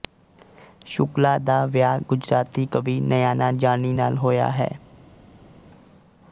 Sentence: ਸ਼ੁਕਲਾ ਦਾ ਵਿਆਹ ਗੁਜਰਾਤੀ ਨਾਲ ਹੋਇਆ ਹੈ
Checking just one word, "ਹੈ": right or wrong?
right